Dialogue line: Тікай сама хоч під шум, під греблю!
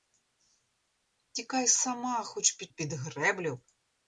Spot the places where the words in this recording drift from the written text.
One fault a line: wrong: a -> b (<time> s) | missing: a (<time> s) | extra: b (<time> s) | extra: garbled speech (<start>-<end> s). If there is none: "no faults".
missing: шум (2.7 s)